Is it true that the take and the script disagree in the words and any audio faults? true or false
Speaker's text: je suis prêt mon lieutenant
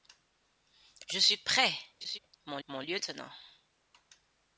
true